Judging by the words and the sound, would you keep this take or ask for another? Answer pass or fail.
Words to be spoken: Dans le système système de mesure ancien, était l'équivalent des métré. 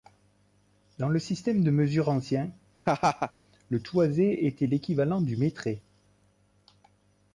fail